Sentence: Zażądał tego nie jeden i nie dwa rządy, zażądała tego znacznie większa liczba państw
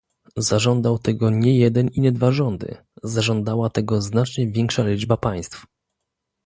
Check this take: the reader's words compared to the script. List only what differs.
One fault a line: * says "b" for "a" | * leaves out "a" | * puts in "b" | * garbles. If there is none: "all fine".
all fine